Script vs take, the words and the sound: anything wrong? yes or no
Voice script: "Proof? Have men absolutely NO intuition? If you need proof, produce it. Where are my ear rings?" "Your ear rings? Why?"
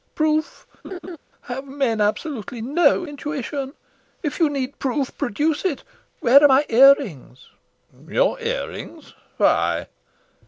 yes